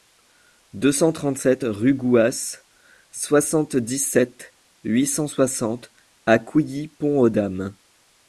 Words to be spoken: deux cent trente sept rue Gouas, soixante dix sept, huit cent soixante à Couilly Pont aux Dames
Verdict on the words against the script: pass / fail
pass